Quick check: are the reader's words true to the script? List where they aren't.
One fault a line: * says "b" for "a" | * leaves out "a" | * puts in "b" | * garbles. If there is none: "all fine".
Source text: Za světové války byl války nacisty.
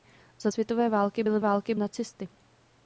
all fine